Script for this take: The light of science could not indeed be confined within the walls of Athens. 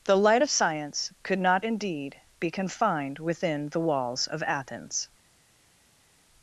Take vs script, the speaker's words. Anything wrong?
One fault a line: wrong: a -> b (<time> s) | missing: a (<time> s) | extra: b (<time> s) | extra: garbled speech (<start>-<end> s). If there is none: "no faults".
no faults